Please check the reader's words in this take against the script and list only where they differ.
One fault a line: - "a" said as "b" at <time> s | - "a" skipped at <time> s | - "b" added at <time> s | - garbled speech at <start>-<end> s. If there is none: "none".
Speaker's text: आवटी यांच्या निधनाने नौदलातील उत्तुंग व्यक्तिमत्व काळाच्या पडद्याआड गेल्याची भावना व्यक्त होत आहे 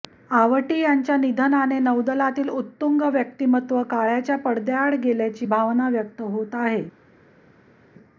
none